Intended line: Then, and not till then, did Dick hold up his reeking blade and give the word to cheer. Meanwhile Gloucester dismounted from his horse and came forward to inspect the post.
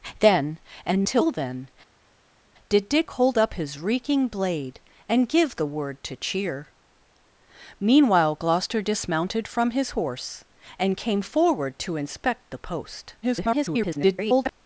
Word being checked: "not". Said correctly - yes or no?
no